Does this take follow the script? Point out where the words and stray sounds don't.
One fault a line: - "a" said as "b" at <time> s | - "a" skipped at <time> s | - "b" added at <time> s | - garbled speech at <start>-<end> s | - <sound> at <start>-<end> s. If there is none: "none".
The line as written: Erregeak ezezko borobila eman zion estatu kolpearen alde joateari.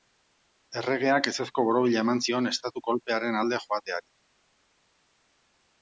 none